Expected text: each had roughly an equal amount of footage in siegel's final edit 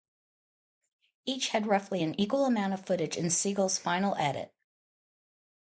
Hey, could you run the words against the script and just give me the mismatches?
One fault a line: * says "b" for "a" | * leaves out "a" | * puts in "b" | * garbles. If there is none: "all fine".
all fine